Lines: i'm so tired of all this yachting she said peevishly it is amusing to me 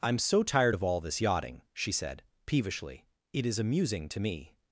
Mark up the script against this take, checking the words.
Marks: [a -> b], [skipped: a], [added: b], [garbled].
i'm so tired of all this yachting she said peevishly it is amusing to me